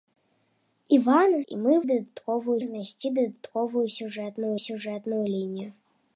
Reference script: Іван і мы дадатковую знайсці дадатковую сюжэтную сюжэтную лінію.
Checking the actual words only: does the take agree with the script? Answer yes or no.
yes